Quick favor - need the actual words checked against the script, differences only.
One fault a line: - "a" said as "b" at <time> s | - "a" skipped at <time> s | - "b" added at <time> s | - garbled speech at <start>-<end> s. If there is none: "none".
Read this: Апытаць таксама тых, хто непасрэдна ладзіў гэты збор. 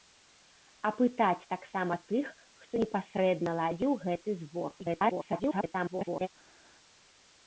- garbled speech at 4.8-6.3 s